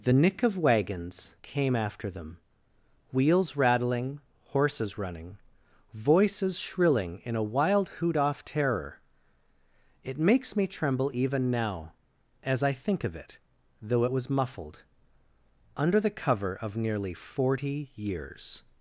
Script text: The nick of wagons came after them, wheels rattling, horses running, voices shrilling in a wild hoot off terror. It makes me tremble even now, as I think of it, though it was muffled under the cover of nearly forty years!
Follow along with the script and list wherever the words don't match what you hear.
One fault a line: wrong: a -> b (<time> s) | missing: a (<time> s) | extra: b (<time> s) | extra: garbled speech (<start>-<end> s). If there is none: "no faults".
no faults